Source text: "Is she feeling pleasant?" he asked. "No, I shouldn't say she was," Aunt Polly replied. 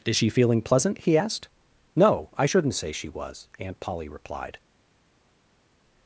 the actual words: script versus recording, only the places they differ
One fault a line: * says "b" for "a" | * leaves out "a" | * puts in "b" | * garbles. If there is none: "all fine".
all fine